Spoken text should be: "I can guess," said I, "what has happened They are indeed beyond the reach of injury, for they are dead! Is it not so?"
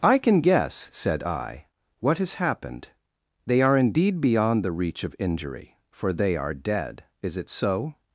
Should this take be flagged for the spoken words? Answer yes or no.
yes